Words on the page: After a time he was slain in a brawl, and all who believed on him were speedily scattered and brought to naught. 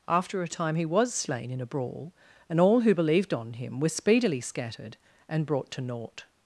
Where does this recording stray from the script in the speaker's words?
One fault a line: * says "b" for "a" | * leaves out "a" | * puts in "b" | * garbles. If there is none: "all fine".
all fine